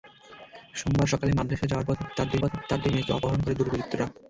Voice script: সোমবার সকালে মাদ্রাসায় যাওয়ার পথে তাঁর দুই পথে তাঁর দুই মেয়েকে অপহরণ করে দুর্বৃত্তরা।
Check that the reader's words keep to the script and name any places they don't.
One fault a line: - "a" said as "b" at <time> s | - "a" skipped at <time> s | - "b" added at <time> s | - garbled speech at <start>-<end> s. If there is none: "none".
none